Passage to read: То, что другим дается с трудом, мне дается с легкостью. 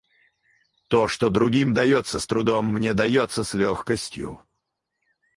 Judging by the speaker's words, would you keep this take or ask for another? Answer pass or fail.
pass